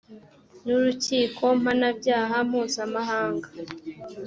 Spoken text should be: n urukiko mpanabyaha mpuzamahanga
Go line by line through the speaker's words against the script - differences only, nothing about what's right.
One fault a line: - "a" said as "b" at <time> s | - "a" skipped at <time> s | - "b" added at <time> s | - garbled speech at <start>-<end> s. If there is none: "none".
none